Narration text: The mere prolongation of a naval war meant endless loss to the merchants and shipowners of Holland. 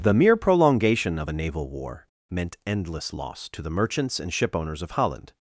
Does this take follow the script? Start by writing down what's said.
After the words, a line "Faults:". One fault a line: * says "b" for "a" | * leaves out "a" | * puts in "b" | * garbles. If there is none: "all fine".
The mere prolongation of a naval war meant endless loss to the merchants and shipowners of Holland.
Faults:
all fine